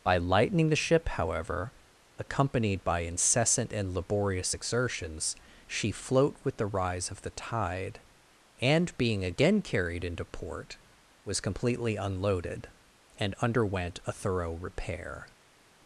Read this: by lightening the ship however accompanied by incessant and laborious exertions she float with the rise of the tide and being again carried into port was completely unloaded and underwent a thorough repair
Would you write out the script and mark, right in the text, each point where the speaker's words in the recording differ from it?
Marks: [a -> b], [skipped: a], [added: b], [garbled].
by lightening the ship however accompanied by incessant and laborious exertions she float with the rise of the tide and being again carried into port was completely unloaded and underwent a thorough repair